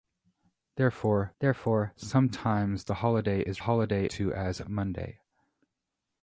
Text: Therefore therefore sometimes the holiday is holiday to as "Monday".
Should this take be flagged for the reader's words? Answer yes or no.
no